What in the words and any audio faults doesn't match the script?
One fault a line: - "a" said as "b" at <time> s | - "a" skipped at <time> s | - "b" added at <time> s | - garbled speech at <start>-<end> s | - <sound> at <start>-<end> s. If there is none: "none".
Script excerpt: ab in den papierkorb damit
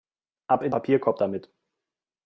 - "den" skipped at 0.7 s